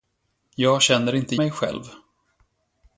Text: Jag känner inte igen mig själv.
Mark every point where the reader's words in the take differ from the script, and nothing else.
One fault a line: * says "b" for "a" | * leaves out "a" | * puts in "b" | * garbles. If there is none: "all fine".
* leaves out "igen"